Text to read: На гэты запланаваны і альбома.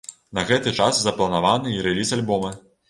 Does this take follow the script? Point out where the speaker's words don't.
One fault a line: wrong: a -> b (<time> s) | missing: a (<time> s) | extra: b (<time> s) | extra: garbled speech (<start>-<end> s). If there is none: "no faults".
extra: час (0.8 s)
extra: рэліз (1.9 s)